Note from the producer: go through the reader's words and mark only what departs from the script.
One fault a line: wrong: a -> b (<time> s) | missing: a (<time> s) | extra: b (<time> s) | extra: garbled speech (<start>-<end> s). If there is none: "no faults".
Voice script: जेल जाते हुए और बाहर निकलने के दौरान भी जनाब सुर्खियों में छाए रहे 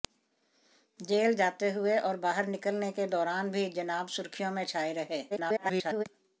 extra: garbled speech (5.3-6.0 s)